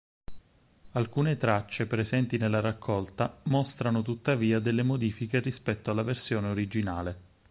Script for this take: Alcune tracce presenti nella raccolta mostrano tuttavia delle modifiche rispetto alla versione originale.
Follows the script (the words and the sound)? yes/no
yes